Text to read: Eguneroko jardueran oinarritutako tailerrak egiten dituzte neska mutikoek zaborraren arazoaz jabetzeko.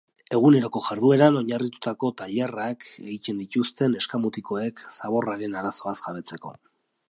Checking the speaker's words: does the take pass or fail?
pass